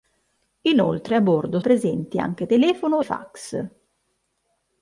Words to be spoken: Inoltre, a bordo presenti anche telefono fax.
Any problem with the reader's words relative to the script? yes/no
no